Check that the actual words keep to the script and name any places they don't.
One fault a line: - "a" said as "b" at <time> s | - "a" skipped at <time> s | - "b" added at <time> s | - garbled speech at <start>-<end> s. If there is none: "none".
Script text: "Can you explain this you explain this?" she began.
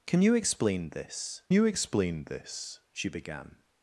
none